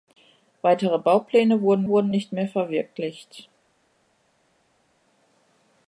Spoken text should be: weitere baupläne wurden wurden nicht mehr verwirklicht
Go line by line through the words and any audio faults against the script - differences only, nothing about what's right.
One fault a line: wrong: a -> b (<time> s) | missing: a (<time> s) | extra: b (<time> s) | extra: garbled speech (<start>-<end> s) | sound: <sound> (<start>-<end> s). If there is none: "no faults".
no faults